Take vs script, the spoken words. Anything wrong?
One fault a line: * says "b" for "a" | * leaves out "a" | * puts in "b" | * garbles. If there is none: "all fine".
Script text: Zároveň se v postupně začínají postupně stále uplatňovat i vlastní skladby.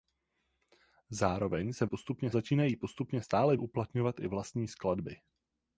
all fine